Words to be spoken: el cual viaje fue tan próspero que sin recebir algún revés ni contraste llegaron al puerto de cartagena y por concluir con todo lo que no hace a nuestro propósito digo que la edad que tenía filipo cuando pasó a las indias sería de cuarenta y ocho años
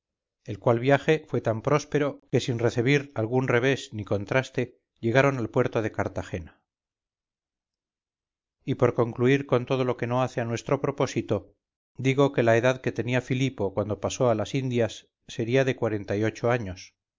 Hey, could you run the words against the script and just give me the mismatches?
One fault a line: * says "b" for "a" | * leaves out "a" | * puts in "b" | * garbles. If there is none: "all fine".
all fine